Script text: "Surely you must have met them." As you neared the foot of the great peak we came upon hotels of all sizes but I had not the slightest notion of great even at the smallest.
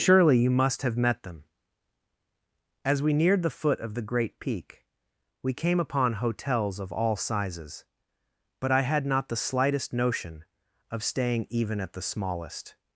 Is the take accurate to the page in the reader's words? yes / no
no